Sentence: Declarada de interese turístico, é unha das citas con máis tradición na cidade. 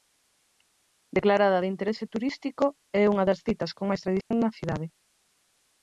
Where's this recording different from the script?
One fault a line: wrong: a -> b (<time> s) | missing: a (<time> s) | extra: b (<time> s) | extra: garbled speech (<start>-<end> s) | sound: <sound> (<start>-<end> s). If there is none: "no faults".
sound: dropout (4.2-4.3 s)